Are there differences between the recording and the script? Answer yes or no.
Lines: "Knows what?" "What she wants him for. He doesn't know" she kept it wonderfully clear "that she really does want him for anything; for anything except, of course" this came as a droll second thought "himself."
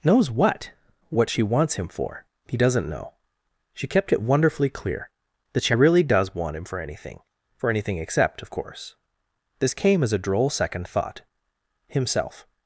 no